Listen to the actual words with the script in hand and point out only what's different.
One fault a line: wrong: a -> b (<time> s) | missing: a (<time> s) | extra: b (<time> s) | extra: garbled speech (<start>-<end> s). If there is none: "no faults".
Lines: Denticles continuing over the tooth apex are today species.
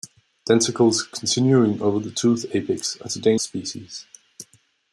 no faults